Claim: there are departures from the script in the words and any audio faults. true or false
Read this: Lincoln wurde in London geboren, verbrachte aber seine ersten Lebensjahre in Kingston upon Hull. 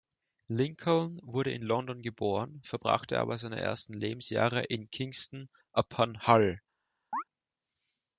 true